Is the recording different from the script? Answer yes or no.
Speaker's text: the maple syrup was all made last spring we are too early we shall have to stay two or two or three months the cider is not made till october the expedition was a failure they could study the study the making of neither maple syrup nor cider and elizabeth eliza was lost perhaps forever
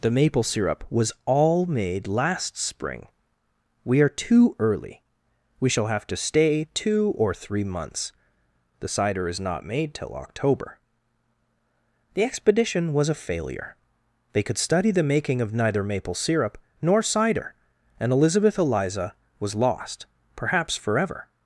yes